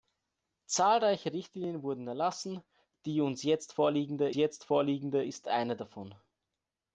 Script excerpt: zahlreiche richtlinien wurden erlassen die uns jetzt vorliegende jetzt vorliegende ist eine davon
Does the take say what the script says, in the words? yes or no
yes